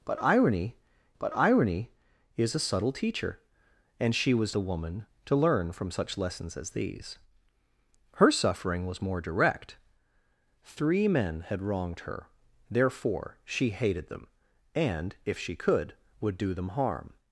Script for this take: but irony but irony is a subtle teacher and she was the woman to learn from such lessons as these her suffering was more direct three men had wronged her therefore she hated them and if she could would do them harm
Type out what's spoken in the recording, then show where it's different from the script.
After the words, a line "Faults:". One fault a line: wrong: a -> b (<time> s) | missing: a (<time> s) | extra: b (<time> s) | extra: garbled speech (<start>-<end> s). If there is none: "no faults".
but irony but irony is a subtle teacher and she was the woman to learn from such lessons as these her suffering was more direct three men had wronged her therefore she hated them and if she could would do them harm
Faults:
no faults